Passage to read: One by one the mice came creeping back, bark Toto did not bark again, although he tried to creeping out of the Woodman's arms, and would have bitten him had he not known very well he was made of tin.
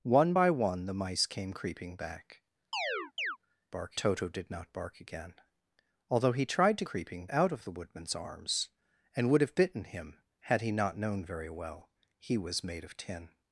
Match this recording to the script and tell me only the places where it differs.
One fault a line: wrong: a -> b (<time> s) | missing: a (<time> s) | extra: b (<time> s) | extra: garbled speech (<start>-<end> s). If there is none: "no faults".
no faults